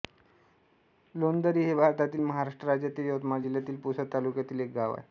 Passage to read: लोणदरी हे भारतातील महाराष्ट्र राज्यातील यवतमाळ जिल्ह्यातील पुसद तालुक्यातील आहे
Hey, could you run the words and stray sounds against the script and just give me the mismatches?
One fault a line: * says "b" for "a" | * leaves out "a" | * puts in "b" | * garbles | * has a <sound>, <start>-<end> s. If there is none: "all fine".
* puts in "एक गाव"